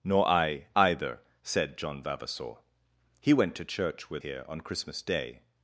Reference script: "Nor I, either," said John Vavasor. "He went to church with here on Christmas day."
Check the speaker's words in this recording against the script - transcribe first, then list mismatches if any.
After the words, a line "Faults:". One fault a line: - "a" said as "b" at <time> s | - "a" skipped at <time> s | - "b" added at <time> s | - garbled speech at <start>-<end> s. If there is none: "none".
"Nor I, either," said John Vavasor. "He went to church with here on Christmas day."
Faults:
none